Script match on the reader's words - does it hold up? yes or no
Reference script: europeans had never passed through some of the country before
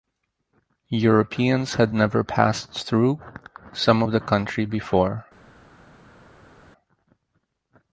yes